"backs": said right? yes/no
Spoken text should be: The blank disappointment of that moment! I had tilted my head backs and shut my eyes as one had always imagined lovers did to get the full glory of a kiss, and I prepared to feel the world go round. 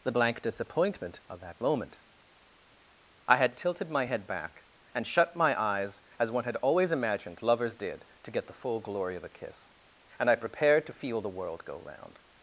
no